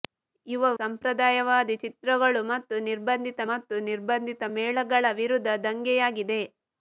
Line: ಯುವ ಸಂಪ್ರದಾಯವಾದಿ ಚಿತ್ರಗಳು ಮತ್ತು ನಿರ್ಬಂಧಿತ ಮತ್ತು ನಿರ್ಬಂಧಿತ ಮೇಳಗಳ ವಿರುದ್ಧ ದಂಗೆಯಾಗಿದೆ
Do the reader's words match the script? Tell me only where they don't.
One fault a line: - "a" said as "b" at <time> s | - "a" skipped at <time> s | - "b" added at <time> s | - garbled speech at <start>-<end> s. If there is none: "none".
none